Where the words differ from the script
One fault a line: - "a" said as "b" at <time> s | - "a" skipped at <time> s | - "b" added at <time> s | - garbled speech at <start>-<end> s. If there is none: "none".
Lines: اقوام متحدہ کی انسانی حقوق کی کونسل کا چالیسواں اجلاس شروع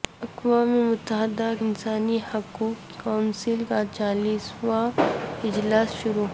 - "کی" skipped at 1.5 s
- "کی" skipped at 3.0 s